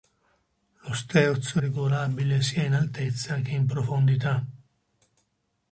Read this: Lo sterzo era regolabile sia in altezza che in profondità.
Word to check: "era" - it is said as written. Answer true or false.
false